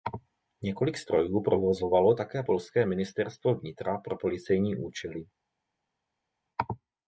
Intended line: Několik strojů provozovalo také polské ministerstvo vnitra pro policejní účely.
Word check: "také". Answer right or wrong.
right